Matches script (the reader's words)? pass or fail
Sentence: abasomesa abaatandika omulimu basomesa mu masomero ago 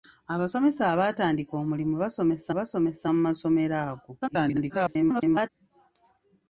fail